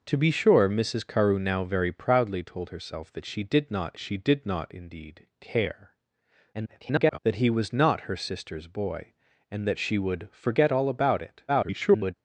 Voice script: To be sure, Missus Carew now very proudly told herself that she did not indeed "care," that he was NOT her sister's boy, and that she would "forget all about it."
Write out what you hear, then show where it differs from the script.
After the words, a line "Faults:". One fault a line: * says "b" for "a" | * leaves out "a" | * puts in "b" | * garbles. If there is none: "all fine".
To be sure, Missus Carew now very proudly told herself that she did not she did not indeed "care," [garbled] that he was NOT her sister's boy, and that she would "forget all about it." [garbled]
Faults:
* puts in "she did not"
* garbles
* garbles